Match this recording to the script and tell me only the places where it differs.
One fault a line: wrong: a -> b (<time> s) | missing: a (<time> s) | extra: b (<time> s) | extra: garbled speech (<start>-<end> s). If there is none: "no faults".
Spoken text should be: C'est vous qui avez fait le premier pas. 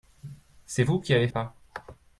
missing: fait le premier (1.3 s)